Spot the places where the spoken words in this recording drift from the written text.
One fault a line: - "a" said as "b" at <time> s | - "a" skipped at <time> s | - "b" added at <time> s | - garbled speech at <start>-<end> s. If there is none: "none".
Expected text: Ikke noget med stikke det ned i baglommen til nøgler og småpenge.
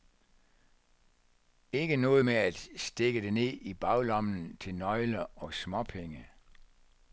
- "at" added at 2.3 s